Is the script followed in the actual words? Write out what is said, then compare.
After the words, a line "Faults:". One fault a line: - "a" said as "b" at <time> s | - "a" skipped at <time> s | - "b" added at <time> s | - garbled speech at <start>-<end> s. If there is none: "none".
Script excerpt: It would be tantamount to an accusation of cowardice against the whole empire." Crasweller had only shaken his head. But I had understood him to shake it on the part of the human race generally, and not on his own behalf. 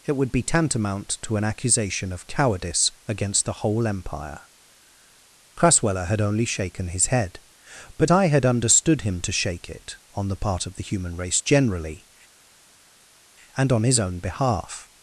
It would be tantamount to an accusation of cowardice against the whole empire." Crasweller had only shaken his head. But I had understood him to shake it on the part of the human race generally, and on his own behalf.
Faults:
- "not" skipped at 13.7 s